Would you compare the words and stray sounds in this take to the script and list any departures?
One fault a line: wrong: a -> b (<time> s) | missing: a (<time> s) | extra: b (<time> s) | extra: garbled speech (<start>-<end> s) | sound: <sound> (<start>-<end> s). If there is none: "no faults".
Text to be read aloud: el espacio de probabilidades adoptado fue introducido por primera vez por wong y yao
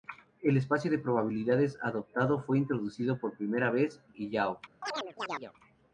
missing: por wong (4.0 s)
sound: chirp (4.8-5.5 s)